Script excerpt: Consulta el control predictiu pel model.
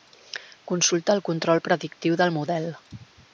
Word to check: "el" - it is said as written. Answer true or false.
true